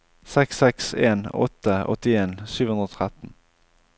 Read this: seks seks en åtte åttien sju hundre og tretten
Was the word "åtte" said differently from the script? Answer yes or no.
no